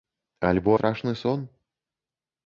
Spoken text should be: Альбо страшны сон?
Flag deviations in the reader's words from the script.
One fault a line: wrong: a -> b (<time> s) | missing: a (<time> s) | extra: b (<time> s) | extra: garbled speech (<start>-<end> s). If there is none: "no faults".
no faults